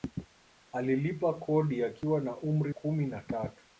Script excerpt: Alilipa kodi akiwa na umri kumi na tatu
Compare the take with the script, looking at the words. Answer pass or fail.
pass